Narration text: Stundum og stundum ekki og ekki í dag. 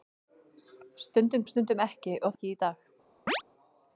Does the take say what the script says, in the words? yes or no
yes